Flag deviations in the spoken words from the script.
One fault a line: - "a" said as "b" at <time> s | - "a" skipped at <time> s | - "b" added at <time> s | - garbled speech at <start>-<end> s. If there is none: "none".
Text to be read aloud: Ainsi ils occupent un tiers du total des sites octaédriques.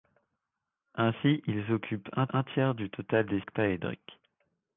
- "un" added at 2.3 s
- "sites" skipped at 3.4 s